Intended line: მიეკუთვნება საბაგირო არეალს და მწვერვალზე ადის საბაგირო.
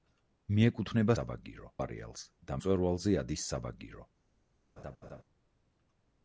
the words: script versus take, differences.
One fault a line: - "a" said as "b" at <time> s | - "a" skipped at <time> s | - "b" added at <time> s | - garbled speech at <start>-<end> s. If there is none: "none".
none